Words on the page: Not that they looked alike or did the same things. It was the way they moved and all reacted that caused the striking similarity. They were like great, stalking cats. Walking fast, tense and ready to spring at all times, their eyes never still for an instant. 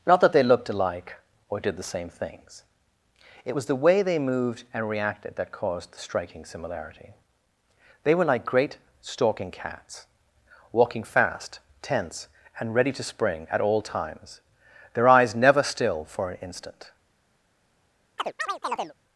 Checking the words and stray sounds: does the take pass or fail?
fail